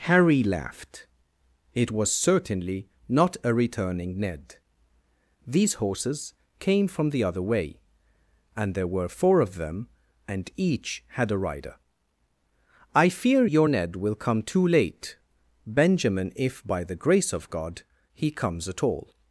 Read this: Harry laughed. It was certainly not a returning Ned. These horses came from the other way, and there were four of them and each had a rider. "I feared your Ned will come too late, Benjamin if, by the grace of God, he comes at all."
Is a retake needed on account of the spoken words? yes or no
yes